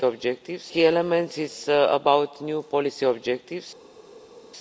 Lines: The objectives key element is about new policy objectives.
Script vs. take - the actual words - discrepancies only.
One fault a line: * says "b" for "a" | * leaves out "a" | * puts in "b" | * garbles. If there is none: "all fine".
all fine